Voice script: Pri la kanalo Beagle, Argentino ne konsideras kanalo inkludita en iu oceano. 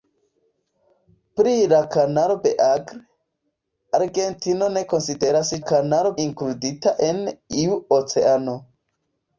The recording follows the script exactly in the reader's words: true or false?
true